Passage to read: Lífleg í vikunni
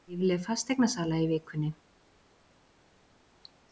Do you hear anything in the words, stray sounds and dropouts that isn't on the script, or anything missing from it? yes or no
yes